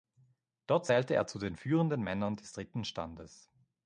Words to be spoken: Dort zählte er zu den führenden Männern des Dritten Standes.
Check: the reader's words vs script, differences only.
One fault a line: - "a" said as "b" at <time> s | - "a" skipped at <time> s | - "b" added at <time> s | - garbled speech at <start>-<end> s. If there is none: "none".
none